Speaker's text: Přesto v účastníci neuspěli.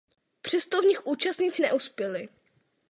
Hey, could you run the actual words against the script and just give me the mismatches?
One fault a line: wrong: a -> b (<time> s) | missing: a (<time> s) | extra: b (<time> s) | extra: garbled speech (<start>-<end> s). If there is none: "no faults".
extra: nich (0.8 s)